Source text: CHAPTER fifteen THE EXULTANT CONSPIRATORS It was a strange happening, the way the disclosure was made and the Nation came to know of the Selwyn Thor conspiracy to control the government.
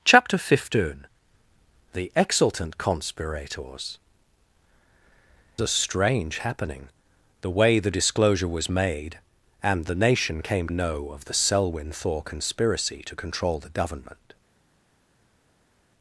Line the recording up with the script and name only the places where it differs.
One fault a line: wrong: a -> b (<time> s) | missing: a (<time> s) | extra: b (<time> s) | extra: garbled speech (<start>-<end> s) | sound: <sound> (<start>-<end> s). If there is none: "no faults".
missing: It was (4.0 s)
missing: to (10.7 s)